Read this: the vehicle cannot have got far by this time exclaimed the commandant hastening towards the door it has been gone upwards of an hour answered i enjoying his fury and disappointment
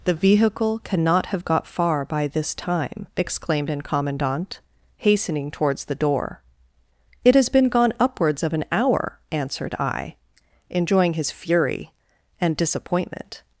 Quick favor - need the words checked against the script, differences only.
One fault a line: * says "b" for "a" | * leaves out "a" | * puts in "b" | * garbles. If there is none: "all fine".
* says "an" for "the"